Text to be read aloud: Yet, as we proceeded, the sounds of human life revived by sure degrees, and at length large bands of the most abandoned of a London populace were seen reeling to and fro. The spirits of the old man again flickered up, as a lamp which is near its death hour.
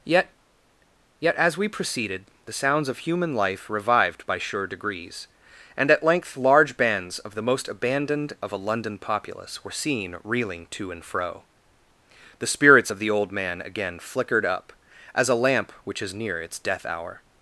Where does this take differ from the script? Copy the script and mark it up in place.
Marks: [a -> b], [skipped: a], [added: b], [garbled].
Yet, [added: yet] as we proceeded, the sounds of human life revived by sure degrees, and at length large bands of the most abandoned of a London populace were seen reeling to and fro. The spirits of the old man again flickered up, as a lamp which is near its death hour.